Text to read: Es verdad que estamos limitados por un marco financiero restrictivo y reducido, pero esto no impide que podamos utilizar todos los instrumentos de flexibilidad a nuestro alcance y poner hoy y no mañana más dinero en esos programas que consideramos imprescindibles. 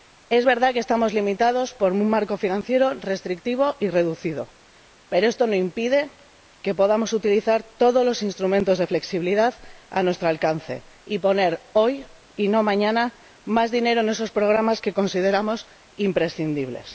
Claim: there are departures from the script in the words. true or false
false